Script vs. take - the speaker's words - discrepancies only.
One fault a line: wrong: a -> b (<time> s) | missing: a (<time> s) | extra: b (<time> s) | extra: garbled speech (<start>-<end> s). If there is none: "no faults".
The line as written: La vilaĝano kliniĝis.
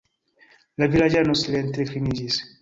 extra: silente (1.4 s)